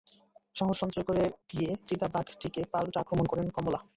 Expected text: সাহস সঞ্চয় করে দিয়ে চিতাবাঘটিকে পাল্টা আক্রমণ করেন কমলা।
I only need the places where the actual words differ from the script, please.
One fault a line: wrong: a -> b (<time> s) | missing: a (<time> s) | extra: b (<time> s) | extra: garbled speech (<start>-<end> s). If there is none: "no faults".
no faults